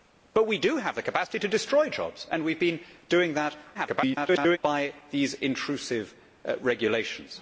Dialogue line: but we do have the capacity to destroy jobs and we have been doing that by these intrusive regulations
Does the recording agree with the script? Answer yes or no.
no